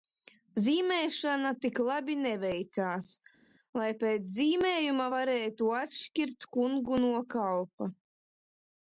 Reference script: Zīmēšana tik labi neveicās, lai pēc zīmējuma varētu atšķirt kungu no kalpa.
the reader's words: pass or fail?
pass